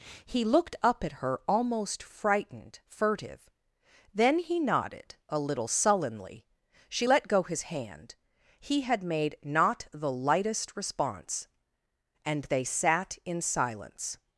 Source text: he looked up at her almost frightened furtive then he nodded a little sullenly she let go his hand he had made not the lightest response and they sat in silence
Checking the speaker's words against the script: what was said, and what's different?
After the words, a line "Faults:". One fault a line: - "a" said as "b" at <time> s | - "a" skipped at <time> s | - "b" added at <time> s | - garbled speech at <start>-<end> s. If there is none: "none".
he looked up at her almost frightened furtive then he nodded a little sullenly she let go his hand he had made not the lightest response and they sat in silence
Faults:
none